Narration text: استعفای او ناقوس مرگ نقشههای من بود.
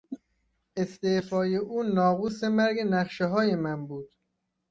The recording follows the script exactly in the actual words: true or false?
true